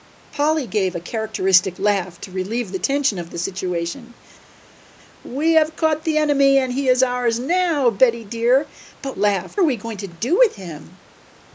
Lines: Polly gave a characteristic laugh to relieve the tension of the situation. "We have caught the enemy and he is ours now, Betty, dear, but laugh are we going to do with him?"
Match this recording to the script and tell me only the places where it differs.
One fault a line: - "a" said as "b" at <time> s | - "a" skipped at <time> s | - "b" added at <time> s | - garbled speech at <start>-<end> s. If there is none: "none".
none